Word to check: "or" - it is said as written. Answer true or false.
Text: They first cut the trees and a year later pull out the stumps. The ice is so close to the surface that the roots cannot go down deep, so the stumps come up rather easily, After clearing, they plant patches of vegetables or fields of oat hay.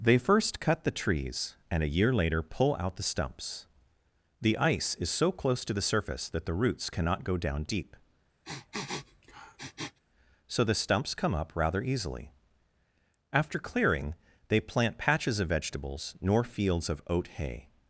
false